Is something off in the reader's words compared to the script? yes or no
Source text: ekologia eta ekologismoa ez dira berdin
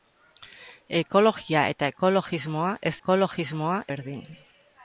yes